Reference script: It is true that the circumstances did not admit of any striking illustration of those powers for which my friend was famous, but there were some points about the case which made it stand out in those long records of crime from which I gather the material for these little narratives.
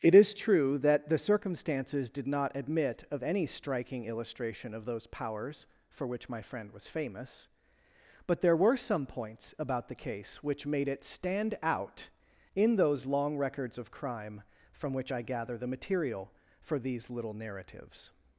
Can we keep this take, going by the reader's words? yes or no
yes